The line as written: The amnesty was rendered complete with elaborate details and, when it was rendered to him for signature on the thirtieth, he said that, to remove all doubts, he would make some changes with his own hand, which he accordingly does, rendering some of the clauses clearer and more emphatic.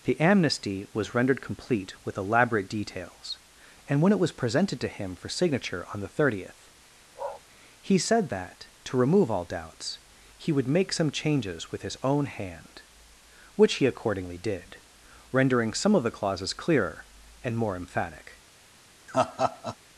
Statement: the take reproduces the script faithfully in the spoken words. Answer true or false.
false